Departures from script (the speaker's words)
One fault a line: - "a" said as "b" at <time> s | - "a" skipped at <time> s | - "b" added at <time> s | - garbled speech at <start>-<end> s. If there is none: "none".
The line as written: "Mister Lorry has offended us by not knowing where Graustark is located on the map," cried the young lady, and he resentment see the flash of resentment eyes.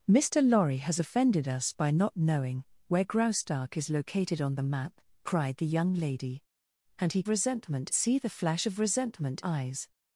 none